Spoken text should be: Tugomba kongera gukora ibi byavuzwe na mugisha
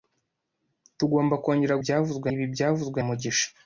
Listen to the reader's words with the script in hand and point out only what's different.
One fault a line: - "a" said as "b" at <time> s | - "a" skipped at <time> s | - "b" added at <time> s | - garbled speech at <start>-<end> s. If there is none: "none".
- "gukora" said as "byavuzwe" at 1.8 s
- "na" skipped at 3.0 s